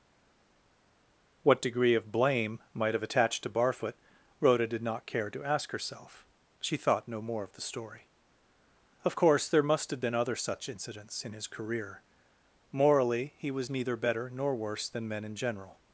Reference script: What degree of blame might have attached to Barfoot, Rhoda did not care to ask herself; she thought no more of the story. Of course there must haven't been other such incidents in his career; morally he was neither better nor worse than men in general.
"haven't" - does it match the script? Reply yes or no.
no